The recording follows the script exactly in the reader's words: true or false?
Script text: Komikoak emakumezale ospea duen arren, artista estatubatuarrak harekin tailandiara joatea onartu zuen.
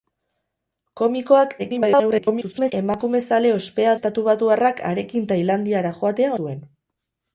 false